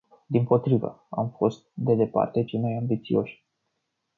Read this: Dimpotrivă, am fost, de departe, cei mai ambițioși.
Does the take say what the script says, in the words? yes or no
yes